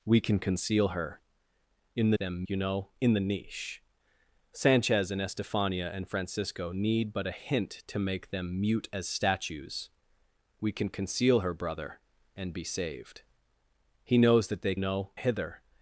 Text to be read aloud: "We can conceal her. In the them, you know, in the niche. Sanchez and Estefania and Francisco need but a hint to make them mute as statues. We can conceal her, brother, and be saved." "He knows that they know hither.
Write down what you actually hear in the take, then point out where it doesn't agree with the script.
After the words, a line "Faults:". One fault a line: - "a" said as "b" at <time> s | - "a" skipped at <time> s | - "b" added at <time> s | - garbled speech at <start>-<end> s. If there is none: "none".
"We can conceal her. In the them, you know, in the niche. Sanchez and Estefania and Francisco need but a hint to make them mute as statues. We can conceal her, brother, and be saved." "He knows that they know hither.
Faults:
none